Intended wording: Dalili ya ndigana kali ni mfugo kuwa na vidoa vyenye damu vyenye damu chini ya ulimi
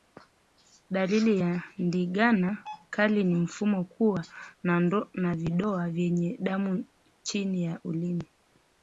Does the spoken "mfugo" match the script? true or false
true